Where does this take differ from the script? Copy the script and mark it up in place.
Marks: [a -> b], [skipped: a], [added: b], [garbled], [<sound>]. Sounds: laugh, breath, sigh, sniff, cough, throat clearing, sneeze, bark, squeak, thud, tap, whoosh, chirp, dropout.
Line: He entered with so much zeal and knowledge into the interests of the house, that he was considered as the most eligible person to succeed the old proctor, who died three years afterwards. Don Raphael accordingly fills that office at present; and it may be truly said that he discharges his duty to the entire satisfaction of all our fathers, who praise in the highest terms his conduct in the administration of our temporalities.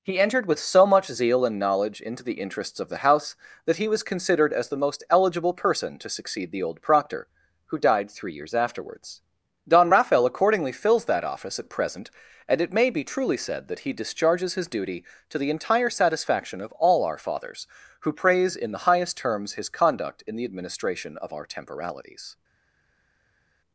He entered with so much zeal and knowledge into the interests of the house, that he was considered as the most eligible person to succeed the old proctor, who died three years afterwards. Don Raphael accordingly fills that office at present; and it may be truly said that he discharges his duty to the entire satisfaction of all our fathers, who praise in the highest terms his conduct in the administration of our temporalities.